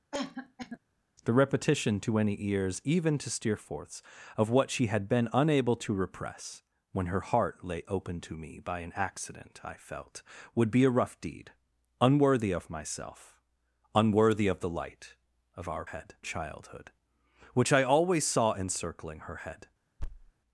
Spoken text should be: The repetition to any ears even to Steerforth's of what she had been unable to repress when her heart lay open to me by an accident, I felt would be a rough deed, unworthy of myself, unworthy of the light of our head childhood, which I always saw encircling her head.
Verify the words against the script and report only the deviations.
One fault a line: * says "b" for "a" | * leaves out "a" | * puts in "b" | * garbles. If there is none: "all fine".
all fine